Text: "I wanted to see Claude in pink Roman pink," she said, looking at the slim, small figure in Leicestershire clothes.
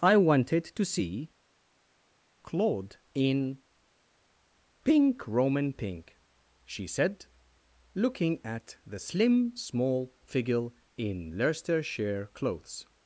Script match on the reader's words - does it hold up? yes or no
yes